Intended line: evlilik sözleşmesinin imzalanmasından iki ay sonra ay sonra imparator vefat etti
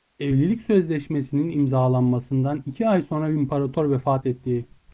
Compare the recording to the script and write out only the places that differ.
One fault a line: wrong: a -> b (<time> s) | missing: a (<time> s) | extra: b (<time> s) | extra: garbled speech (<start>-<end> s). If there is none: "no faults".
missing: ay sonra (3.3 s)